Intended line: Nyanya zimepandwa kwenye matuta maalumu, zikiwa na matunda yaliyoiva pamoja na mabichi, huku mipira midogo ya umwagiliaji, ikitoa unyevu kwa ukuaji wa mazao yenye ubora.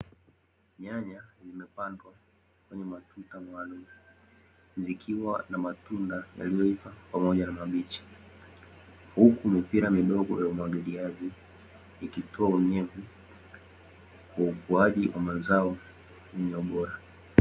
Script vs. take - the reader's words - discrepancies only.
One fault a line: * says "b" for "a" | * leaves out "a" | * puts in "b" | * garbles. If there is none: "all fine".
all fine